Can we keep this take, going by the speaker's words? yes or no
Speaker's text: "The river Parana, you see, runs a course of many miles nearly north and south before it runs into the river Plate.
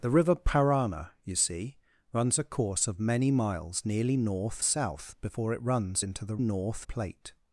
no